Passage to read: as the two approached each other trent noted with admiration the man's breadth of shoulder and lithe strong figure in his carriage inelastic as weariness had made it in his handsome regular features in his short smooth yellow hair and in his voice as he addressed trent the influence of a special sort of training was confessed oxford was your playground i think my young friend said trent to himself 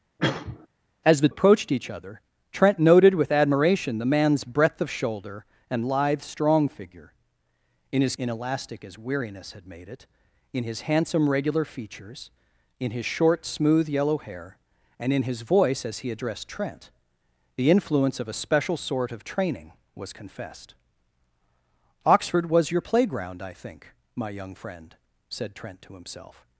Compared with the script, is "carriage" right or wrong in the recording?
wrong